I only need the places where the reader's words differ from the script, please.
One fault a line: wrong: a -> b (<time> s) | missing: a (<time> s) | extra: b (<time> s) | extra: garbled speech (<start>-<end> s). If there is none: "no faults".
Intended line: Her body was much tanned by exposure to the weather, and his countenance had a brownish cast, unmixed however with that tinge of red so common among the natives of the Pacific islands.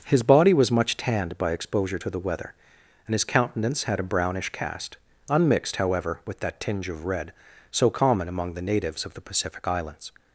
wrong: Her -> His (0.1 s)